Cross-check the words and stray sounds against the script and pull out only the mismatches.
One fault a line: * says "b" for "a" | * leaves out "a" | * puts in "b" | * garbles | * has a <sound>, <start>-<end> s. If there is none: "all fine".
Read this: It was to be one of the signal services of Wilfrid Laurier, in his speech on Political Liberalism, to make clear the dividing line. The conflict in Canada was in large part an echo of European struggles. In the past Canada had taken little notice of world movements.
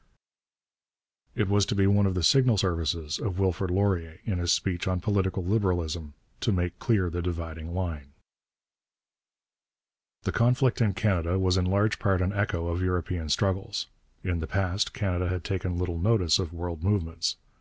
all fine